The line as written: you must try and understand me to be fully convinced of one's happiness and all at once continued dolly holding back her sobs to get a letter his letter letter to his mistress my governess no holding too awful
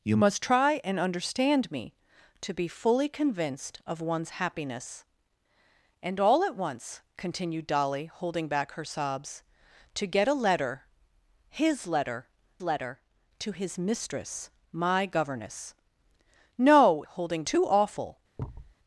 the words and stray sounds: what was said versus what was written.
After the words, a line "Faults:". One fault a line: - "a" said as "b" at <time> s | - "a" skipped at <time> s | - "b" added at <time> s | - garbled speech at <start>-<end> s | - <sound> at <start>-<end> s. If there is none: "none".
you must try and understand me to be fully convinced of one's happiness and all at once continued dolly holding back her sobs to get a letter his letter letter to his mistress my governess no holding too awful
Faults:
- thud at 18.4-18.7 s